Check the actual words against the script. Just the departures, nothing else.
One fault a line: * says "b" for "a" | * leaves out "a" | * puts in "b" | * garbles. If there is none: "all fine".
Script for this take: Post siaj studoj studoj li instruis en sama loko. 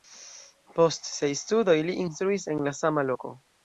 * leaves out "studoj"
* puts in "la"